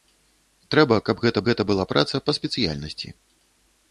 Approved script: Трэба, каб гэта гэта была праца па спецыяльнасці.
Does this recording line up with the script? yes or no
yes